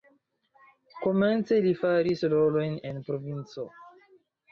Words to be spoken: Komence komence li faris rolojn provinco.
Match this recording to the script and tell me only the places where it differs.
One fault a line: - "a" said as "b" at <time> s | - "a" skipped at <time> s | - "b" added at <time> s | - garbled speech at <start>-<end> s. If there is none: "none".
- "komence" skipped at 1.6 s
- "en" added at 2.9 s